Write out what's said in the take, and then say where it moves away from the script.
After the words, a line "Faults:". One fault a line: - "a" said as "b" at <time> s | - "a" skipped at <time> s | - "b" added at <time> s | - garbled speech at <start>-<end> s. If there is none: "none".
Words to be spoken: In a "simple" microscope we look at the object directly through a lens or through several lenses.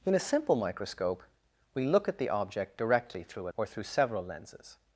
In a "simple" microscope we look at the object directly through a or through several lenses.
Faults:
- "lens" skipped at 3.5 s